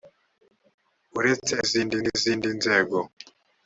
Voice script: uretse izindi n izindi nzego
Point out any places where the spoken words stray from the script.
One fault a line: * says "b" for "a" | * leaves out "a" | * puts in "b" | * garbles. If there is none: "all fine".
all fine